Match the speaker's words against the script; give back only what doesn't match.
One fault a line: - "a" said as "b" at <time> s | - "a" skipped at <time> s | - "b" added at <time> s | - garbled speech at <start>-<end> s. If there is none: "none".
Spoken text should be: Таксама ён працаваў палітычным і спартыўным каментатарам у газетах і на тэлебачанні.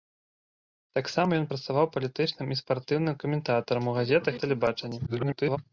- "і" skipped at 4.3 s
- garbled speech at 5.1-5.6 s